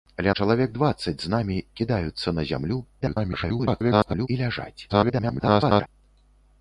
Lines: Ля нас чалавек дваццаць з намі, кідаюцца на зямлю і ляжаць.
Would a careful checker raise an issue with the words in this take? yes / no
yes